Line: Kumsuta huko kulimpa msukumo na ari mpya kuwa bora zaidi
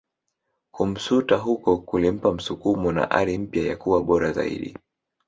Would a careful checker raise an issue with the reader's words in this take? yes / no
yes